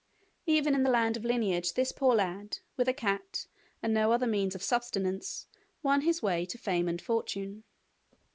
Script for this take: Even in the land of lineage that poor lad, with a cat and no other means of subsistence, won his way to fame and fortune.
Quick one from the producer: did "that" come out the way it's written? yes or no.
no